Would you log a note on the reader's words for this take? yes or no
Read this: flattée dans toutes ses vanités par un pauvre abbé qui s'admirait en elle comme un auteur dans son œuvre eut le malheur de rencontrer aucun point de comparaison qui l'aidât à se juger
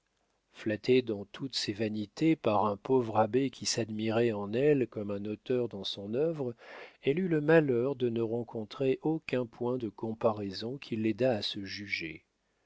yes